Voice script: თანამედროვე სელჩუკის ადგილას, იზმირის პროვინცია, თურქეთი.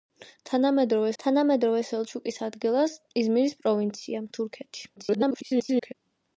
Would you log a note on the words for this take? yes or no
yes